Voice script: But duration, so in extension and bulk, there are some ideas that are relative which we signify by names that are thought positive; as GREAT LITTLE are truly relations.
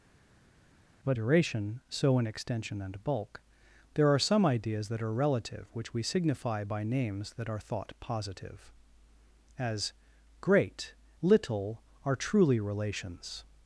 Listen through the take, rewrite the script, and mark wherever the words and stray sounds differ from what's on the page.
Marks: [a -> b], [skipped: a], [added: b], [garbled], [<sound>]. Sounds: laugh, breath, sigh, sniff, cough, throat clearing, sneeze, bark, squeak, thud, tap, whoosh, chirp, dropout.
But duration, so in extension and bulk, there are some ideas that are relative which we signify by names that are thought positive; as GREAT LITTLE are truly relations.